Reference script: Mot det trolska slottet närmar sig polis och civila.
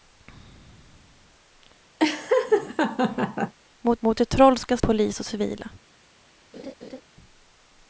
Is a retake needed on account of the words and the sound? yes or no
yes